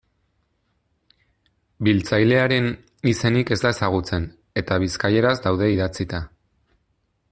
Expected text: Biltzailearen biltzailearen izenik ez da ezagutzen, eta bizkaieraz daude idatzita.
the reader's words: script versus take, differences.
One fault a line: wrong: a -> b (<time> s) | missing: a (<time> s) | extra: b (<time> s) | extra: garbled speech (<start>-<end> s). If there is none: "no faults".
missing: biltzailearen (2.7 s)